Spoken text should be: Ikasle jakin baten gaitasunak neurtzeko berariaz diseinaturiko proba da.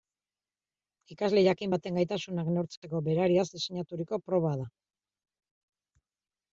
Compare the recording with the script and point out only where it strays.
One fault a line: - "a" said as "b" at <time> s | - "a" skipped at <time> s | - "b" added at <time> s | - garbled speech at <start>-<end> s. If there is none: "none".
none